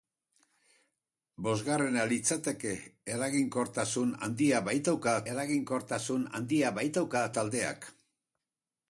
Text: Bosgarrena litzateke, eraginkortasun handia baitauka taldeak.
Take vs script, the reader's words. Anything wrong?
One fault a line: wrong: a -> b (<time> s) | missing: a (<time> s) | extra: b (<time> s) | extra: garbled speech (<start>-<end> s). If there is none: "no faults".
extra: eraginkortasun handia baitauka (5.3 s)